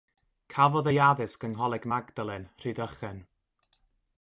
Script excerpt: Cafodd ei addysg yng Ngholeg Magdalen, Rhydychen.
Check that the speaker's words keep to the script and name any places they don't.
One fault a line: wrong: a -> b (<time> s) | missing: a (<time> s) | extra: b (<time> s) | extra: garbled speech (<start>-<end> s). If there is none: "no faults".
no faults